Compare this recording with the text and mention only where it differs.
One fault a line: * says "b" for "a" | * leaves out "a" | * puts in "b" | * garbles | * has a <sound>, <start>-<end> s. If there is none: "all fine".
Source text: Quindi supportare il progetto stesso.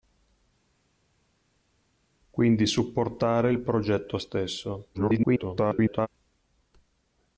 * garbles